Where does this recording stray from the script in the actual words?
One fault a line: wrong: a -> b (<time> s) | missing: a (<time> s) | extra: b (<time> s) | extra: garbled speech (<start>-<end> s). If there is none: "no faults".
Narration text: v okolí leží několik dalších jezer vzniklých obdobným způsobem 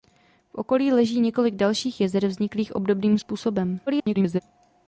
extra: garbled speech (3.9-4.4 s)